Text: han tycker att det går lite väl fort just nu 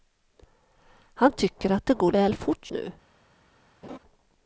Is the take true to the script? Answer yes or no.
no